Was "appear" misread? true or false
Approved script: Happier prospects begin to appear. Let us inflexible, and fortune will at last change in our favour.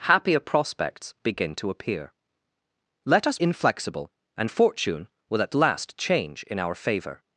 false